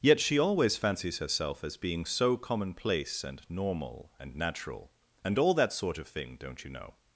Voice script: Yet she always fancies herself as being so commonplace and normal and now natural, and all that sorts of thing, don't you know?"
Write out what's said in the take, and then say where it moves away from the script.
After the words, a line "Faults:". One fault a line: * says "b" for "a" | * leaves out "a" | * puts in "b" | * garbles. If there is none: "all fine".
Yet she always fancies herself as being so commonplace and normal and natural, and all that sort of thing, don't you know?"
Faults:
* leaves out "now"
* says "sort" for "sorts"